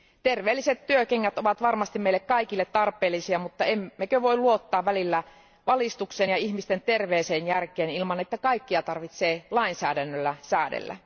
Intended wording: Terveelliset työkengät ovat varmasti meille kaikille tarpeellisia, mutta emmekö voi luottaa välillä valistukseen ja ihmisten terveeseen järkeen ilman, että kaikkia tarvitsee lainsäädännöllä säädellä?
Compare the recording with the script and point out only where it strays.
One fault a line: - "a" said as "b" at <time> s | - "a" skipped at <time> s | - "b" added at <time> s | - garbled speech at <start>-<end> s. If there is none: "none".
none